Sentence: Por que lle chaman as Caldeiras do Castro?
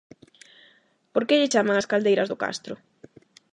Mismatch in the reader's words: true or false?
false